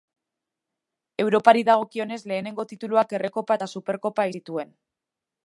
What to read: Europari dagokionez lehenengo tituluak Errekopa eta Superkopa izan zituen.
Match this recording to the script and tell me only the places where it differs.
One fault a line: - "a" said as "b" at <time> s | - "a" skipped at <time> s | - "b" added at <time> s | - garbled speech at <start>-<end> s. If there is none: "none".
- "izan" skipped at 4.3 s